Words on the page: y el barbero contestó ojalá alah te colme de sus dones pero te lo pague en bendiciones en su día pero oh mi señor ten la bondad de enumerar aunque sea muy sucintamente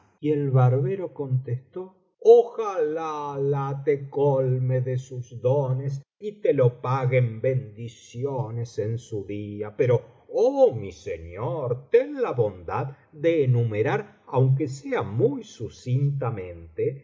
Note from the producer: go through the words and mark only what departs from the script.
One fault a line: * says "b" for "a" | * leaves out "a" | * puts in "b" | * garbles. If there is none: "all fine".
* says "y" for "pero"